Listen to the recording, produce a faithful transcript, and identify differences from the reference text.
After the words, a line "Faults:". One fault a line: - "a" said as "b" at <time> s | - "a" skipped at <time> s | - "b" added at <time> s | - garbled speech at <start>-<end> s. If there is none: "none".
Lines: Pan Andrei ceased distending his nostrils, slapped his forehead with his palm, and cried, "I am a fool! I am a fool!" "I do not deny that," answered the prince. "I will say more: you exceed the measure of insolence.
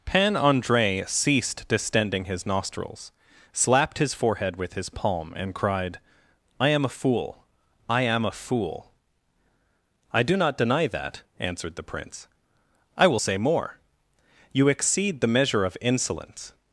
Pan Andrei ceased distending his nostrils, slapped his forehead with his palm, and cried, "I am a fool! I am a fool!" "I do not deny that," answered the prince. "I will say more: you exceed the measure of insolence.
Faults:
none